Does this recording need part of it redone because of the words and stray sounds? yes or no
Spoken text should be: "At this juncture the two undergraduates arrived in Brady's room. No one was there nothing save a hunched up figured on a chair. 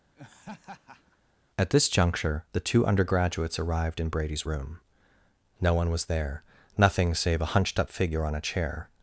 yes